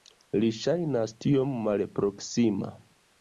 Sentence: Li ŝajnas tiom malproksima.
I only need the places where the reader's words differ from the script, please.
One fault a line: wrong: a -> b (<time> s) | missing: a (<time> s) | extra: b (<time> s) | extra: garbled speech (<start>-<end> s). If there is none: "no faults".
no faults